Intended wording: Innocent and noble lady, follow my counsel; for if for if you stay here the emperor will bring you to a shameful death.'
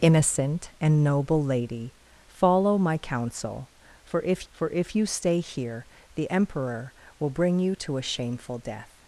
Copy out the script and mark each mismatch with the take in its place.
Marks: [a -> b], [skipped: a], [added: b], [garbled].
Innocent and noble lady, follow my counsel; for if for if you stay here the emperor will bring you to a shameful death.'